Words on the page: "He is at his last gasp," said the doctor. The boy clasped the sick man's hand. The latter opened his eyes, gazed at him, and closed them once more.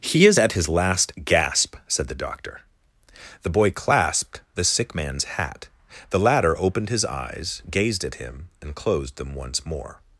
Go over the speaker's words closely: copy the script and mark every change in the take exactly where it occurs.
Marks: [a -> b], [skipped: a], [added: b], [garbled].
"He is at his last gasp," said the doctor. The boy clasped the sick man's [hand. -> hat] The latter opened his eyes, gazed at him, and closed them once more.